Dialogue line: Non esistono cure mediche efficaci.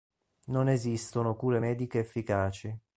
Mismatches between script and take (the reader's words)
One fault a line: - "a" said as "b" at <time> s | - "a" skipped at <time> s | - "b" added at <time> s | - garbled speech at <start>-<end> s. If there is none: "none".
none